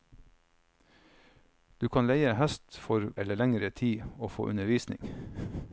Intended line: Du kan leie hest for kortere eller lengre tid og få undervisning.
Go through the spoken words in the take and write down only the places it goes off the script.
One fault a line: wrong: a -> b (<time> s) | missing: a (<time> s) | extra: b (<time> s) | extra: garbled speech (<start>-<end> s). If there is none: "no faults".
missing: kortere (3.1 s)